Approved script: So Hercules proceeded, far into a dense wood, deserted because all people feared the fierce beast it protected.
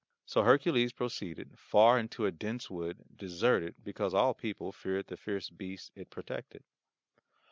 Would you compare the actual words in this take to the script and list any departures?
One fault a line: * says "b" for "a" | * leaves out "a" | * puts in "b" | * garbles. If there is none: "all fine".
all fine